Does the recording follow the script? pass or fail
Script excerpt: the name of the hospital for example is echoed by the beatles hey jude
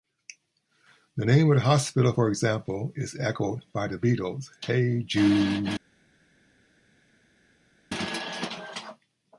pass